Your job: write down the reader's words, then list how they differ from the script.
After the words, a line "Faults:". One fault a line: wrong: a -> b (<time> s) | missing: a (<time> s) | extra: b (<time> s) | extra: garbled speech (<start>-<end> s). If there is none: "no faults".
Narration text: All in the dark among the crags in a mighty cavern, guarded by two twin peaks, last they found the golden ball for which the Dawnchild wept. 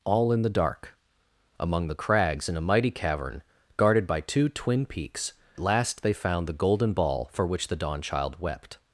All in the dark among the crags in a mighty cavern, guarded by two twin peaks, last they found the golden ball for which the Dawnchild wept.
Faults:
no faults